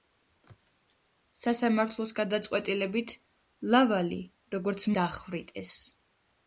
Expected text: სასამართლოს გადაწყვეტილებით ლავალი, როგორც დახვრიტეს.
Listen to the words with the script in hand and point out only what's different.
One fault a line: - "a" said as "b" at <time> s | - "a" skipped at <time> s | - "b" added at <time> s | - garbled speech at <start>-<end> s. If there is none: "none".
none